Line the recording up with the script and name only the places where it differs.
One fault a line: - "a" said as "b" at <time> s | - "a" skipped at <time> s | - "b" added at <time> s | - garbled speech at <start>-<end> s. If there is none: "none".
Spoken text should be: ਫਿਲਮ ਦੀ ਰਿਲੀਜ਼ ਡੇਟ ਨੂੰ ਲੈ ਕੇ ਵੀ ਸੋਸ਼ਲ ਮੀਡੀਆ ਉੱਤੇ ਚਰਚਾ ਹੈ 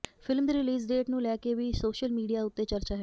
none